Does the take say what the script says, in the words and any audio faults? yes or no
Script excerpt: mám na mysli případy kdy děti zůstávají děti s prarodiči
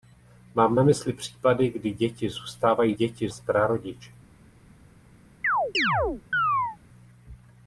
no